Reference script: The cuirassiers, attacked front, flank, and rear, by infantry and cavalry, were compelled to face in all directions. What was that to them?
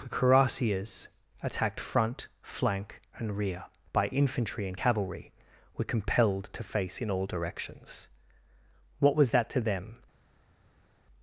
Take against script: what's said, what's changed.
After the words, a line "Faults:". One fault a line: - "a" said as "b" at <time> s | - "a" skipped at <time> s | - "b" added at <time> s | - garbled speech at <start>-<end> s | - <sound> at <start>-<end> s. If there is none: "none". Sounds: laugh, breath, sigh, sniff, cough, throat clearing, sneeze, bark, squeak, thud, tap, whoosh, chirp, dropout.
The cuirassiers, attacked front, flank, and rear, by infantry and cavalry, were compelled to face in all directions. What was that to them?
Faults:
none